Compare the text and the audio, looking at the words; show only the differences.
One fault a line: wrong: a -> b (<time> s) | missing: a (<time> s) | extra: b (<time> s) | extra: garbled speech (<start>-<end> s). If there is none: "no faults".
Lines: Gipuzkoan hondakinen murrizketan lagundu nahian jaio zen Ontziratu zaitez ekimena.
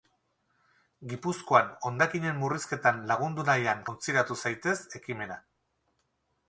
missing: jaio zen (3.9 s)